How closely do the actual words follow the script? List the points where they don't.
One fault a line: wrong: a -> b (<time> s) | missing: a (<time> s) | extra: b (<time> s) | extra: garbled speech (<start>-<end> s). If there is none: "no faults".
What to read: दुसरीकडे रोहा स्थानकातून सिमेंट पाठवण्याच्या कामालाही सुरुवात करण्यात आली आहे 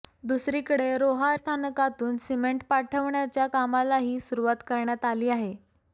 no faults